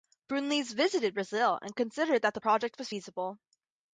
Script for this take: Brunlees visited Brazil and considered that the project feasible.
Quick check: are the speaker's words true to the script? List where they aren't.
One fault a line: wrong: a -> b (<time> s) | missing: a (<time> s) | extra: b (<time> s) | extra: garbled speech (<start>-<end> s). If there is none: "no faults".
extra: was (2.8 s)